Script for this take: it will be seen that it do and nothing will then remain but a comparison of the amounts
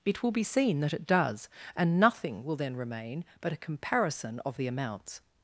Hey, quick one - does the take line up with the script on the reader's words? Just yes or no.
no